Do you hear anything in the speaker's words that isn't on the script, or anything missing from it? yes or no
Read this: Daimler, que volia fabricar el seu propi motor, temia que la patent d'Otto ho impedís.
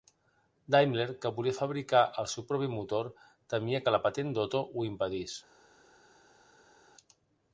no